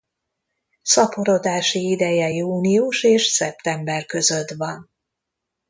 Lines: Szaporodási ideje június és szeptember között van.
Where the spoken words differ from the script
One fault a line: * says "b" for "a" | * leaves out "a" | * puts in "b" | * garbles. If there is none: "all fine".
all fine